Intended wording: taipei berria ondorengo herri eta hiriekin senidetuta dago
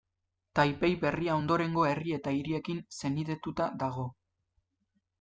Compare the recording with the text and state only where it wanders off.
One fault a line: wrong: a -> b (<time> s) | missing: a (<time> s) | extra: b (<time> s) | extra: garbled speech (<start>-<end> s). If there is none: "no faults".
no faults